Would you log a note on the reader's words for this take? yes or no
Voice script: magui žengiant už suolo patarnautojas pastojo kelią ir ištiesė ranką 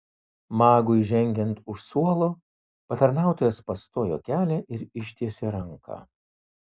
no